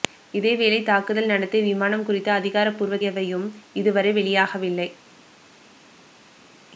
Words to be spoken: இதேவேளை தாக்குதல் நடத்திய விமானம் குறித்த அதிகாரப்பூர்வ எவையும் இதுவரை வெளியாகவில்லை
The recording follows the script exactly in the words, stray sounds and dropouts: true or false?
true